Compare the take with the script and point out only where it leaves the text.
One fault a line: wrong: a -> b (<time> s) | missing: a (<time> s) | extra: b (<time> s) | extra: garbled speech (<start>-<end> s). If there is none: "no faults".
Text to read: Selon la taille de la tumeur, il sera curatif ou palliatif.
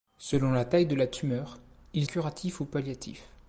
missing: sera (2.1 s)